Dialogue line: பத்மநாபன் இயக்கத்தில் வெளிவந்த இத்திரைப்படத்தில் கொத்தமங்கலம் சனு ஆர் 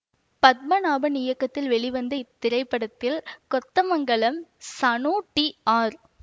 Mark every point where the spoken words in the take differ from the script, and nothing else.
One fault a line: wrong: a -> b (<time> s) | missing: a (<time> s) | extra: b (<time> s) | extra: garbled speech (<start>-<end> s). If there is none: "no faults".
extra: டி (5.3 s)